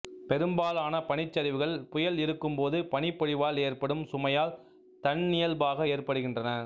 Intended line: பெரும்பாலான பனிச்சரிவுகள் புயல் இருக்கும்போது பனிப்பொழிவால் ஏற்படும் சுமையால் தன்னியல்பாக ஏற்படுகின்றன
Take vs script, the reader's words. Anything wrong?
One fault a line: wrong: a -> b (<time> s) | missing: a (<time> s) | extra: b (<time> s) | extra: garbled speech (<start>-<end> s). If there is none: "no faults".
no faults